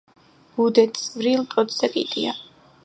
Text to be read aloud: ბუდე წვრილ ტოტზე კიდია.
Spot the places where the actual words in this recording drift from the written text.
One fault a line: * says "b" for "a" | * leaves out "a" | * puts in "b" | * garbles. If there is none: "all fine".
all fine